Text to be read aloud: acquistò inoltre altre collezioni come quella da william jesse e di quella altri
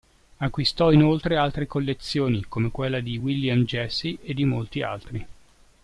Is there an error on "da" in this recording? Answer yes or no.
yes